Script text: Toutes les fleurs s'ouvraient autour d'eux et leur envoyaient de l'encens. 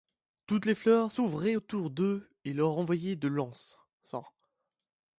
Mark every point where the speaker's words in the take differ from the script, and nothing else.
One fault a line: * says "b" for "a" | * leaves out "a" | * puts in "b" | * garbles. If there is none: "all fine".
all fine